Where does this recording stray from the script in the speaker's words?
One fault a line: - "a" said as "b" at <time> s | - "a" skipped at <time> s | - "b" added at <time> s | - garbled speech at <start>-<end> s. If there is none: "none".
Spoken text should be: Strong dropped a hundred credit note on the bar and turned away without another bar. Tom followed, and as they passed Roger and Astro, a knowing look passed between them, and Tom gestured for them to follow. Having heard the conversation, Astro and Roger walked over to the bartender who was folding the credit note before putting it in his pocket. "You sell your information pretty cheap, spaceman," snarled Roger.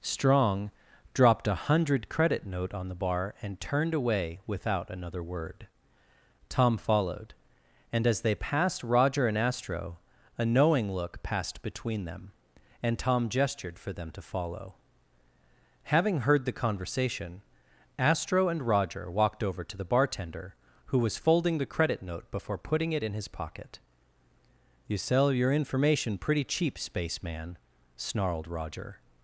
- "bar" said as "word" at 5.2 s